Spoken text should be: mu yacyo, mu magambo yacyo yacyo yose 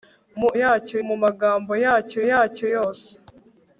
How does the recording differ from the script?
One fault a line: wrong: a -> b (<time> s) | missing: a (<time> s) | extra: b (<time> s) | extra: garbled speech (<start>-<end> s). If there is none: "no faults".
no faults